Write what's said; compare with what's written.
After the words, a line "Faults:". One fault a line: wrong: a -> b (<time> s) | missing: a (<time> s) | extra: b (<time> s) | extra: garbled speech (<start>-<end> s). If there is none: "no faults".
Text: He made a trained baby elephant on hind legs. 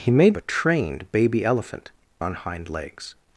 He made a trained baby elephant on hind legs.
Faults:
no faults